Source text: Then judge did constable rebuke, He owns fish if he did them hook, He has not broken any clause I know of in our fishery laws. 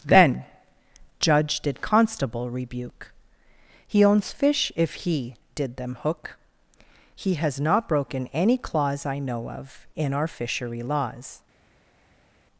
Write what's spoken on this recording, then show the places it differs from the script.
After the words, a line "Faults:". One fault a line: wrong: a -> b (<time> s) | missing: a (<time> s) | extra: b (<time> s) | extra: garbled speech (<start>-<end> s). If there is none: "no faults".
Then judge did constable rebuke, He owns fish if he did them hook, He has not broken any clause I know of in our fishery laws.
Faults:
no faults